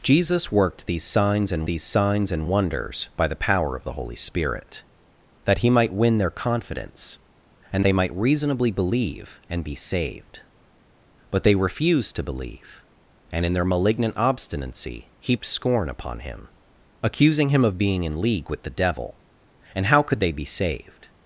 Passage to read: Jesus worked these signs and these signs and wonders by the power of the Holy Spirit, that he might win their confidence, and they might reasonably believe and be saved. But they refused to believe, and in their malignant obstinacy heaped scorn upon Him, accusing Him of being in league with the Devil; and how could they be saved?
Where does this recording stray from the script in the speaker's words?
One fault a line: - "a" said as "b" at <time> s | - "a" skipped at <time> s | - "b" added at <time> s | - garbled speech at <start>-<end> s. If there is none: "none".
none